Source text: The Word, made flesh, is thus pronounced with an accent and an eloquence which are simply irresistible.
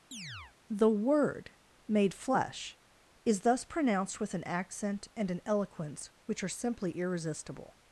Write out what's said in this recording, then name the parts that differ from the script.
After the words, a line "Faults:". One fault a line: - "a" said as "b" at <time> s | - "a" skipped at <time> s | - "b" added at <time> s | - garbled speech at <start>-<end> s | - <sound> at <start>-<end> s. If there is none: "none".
The Word, made flesh, is thus pronounced with an accent and an eloquence which are simply irresistible.
Faults:
- chirp at 0.1-0.6 s